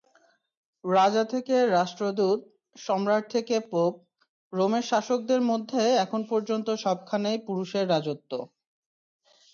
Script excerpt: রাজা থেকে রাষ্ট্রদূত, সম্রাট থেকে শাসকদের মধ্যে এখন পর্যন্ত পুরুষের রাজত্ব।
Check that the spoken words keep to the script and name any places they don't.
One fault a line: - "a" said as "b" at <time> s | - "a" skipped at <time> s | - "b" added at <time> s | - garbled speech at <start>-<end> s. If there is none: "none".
- "পোপ রোমের" added at 3.7 s
- "সবখানেই" added at 6.8 s